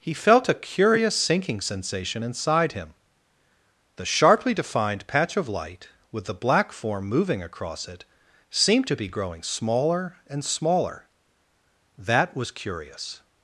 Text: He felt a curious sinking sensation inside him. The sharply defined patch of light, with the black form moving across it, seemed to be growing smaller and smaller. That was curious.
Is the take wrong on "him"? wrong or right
right